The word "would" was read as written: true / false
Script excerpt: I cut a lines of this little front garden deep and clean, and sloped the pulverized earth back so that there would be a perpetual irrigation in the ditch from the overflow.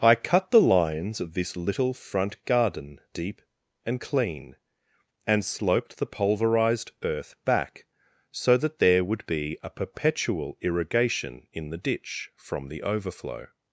true